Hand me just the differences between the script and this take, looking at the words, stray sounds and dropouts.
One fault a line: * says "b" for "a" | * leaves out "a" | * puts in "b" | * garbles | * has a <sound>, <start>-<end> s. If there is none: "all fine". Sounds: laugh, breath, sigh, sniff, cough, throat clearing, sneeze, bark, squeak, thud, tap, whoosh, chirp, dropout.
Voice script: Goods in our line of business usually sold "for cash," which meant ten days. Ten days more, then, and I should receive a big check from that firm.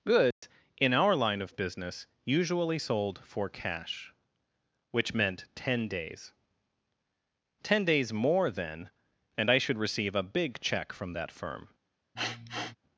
* has a dropout, 0.3-0.4 s
* has a sniff, 12.2-12.8 s